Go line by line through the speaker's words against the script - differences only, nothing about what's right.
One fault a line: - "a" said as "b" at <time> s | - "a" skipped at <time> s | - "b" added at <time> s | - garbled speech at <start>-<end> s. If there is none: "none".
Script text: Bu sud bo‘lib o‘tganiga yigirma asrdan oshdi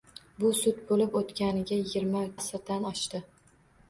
none